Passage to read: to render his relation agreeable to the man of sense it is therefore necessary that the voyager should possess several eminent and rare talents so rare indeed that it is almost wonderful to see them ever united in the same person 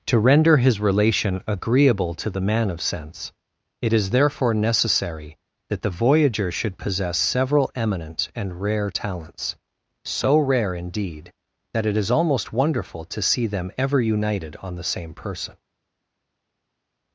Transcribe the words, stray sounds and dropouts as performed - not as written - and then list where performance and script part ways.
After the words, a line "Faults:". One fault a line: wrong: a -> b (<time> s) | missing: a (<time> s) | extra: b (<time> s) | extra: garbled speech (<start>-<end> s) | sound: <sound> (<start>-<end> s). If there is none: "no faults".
to render his relation agreeable to the man of sense it is therefore necessary that the voyager should possess several eminent and rare talents so rare indeed that it is almost wonderful to see them ever united on the same person
Faults:
wrong: in -> on (14.6 s)